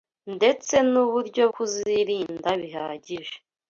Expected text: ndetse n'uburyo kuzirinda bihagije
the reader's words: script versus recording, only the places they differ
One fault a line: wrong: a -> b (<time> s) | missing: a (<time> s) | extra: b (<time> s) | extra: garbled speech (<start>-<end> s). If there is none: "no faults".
no faults